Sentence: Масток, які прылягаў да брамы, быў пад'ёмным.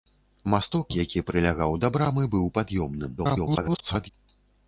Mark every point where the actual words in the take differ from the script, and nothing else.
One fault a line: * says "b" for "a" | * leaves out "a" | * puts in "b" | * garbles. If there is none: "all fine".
* garbles